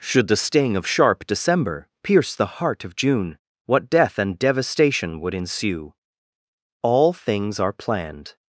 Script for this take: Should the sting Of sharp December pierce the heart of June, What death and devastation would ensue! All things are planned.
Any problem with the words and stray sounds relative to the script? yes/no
no